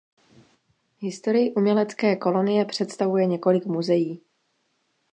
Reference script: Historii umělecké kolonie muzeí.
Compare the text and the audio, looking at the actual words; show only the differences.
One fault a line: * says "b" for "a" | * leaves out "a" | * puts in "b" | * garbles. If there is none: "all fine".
* puts in "představuje několik"